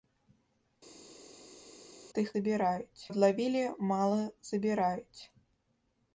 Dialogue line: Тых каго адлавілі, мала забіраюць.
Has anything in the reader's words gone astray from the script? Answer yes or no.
yes